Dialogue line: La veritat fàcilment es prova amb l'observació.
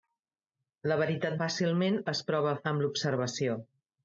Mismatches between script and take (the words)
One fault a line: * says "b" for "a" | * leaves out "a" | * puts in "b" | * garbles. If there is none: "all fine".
all fine